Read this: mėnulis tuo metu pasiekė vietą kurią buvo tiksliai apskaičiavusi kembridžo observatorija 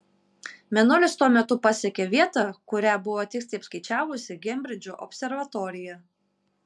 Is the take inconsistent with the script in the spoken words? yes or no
no